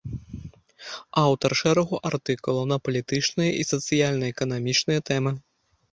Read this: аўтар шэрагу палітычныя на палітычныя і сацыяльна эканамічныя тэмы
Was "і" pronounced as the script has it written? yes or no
yes